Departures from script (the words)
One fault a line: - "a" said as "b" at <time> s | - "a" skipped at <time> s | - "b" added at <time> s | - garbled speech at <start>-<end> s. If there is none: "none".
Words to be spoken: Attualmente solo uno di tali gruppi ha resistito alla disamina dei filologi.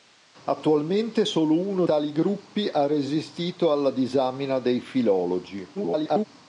- "di" skipped at 1.8 s
- garbled speech at 5.7-6.3 s